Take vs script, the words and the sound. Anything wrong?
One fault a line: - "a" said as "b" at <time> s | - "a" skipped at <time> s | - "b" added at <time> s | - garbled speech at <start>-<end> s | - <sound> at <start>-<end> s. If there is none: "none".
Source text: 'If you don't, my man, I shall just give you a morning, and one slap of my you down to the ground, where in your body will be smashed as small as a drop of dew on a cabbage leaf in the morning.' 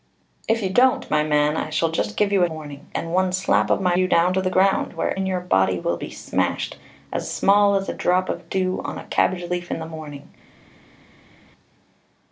none